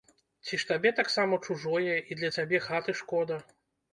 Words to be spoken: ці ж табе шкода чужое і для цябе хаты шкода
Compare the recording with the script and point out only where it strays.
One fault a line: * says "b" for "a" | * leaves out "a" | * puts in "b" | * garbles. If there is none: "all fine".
* says "таксама" for "шкода"